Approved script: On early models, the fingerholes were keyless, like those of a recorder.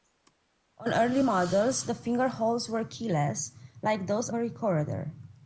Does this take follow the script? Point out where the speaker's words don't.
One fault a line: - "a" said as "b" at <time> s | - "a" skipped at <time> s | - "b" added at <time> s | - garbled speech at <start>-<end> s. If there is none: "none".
- "of" skipped at 4.3 s